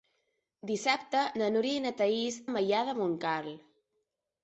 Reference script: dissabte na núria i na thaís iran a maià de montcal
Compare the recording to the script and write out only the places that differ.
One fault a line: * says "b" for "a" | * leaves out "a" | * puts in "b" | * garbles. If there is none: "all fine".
* leaves out "iran"